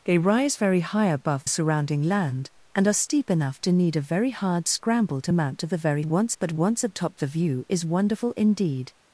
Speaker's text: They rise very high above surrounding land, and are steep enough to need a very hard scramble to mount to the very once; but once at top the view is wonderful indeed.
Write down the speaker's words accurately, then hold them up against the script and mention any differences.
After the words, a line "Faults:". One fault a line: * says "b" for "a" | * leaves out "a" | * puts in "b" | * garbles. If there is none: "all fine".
They rise very high above surrounding land, and are steep enough to need a very hard scramble to mount to the very once; but once at top the view is wonderful indeed.
Faults:
all fine